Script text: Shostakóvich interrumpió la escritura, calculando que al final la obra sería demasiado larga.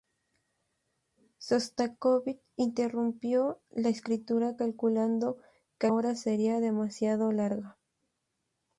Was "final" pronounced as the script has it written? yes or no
no